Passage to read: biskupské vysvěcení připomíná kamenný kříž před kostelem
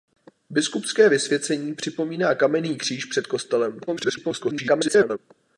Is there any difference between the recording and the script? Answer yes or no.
yes